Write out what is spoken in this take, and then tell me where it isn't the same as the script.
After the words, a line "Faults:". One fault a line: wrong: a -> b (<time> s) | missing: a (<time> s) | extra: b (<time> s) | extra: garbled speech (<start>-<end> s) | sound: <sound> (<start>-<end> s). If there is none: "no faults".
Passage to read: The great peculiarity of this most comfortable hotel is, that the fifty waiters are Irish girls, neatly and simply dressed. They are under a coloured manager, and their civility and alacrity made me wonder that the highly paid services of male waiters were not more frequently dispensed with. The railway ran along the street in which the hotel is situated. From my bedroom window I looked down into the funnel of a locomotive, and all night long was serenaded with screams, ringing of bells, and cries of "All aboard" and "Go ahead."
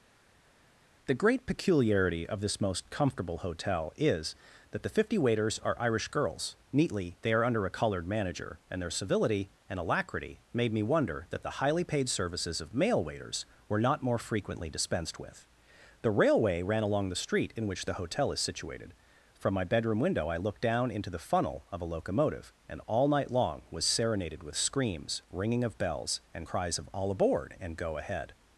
The great peculiarity of this most comfortable hotel is, that the fifty waiters are Irish girls, neatly. They are under a coloured manager, and their civility and alacrity made me wonder that the highly paid services of male waiters were not more frequently dispensed with. The railway ran along the street in which the hotel is situated. From my bedroom window I looked down into the funnel of a locomotive, and all night long was serenaded with screams, ringing of bells, and cries of "All aboard" and "Go ahead."
Faults:
missing: and simply dressed (7.2 s)